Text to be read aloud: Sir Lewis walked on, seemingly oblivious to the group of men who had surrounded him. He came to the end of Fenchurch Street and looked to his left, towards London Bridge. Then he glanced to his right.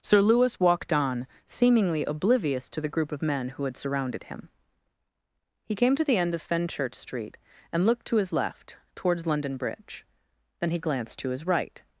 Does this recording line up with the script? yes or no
yes